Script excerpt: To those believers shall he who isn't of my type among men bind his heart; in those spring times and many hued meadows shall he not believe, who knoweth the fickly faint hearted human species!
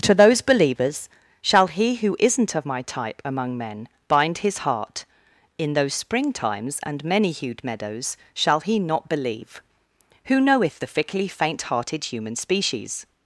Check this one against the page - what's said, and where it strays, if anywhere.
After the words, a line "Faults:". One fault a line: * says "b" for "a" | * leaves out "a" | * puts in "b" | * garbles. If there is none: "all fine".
To those believers shall he who isn't of my type among men bind his heart; in those spring times and many hued meadows shall he not believe, who knoweth the fickly faint hearted human species!
Faults:
all fine